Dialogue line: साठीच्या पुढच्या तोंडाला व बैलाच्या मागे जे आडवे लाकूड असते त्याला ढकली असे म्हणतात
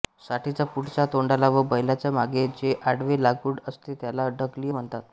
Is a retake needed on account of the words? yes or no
yes